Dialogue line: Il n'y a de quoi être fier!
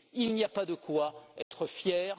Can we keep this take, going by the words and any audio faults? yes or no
no